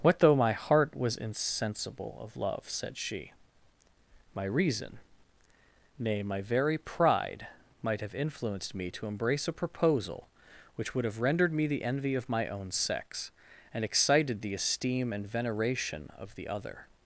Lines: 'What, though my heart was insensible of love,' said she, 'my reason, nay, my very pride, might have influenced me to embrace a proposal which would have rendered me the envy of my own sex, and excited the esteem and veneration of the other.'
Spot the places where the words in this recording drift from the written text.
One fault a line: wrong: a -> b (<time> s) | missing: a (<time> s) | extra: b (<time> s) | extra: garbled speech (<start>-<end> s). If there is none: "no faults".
no faults